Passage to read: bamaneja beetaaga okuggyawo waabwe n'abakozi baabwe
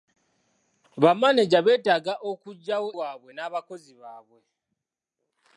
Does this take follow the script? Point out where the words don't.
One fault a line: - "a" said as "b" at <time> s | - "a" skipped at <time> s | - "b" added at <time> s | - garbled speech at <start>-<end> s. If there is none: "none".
none